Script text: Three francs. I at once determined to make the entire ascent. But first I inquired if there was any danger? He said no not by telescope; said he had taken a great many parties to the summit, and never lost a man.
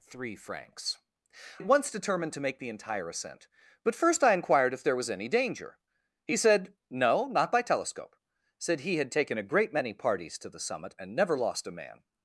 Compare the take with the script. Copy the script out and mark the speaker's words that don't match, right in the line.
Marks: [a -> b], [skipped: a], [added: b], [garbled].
Three francs. [skipped: I] at once determined to make the entire ascent. But first I inquired if there was any danger? He said no not by telescope; said he had taken a great many parties to the summit, and never lost a man.